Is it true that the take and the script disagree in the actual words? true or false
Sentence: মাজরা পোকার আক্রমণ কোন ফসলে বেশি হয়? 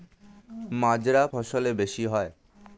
true